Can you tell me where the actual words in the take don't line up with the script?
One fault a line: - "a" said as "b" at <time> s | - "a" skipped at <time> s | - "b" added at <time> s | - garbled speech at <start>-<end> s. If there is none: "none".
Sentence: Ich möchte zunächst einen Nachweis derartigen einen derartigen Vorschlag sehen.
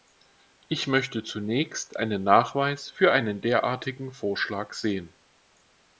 - "derartigen" said as "für" at 2.9 s